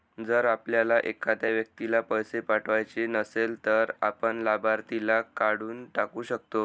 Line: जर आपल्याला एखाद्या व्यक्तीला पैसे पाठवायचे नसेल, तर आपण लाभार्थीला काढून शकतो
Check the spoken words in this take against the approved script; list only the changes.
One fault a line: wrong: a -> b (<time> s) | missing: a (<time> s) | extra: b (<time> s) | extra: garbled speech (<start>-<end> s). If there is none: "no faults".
extra: टाकू (5.9 s)